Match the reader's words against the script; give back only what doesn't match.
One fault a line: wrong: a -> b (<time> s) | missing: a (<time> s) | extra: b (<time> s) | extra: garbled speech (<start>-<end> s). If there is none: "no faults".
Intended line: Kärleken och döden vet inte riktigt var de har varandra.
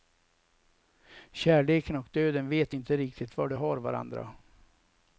no faults